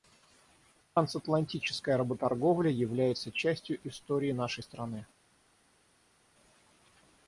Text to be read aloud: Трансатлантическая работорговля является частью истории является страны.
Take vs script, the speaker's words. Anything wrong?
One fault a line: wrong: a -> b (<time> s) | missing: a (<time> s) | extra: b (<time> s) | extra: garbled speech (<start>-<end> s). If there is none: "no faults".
wrong: является -> нашей (4.3 s)